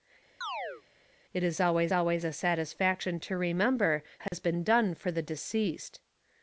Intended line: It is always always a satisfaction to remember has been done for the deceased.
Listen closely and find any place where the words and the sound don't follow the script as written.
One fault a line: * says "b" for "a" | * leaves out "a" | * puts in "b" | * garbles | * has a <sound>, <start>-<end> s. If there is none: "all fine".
* has a chirp, 0.4-0.8 s
* has a dropout, 4.3-4.3 s